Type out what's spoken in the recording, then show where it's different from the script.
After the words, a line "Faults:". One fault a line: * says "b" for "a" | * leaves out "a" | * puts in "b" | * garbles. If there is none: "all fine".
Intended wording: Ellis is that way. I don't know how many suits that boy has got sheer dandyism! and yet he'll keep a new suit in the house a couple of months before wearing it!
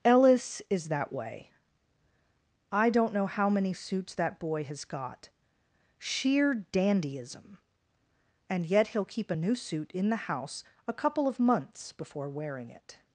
Ellis is that way. I don't know how many suits that boy has got sheer dandyism! and yet he'll keep a new suit in the house a couple of months before wearing it!
Faults:
all fine